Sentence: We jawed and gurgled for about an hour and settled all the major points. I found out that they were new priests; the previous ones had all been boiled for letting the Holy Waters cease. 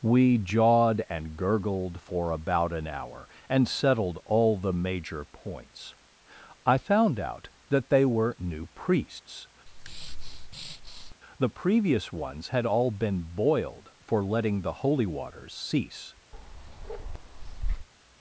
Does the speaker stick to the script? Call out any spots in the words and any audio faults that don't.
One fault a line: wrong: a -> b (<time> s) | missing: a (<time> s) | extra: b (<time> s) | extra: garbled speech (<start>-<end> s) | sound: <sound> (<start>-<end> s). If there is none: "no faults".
sound: breath (9.7-11.2 s)
sound: bark (16.3-17.9 s)